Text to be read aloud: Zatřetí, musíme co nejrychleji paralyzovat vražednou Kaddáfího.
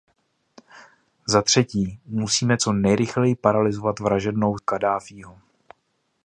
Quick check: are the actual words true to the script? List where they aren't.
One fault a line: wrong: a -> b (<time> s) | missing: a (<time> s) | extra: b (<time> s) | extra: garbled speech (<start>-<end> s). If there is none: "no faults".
no faults